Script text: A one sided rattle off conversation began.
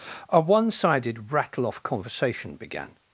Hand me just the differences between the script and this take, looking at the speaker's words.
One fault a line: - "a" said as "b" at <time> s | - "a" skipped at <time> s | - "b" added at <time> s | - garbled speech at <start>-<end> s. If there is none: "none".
none